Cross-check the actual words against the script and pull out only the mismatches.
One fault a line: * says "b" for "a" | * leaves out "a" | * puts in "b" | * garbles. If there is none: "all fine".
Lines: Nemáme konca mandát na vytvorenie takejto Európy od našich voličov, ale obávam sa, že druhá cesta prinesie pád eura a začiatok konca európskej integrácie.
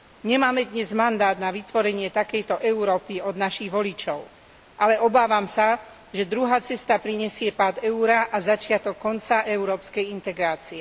* says "dnes" for "konca"